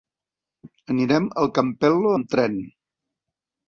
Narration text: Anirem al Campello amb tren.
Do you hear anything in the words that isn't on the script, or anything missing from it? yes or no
no